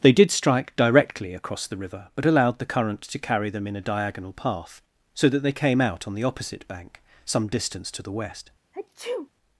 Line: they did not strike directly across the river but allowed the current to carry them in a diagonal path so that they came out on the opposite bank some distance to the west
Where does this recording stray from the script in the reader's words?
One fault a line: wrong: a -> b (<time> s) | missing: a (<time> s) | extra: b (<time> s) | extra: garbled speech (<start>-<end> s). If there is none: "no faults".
missing: not (0.3 s)